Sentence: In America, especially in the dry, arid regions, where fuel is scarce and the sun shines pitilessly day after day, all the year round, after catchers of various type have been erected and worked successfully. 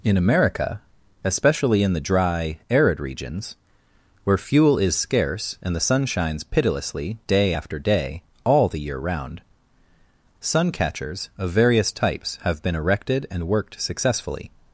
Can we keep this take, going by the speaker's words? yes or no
no